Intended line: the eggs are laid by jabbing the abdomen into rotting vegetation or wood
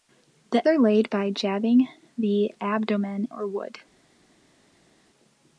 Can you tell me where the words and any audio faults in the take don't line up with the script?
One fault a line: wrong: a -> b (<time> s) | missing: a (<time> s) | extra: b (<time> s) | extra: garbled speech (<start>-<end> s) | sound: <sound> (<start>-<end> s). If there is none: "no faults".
missing: eggs (0.7 s)
missing: into rotting vegetation (3.3 s)